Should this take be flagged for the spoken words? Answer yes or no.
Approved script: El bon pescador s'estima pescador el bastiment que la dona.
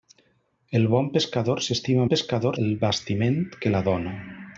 no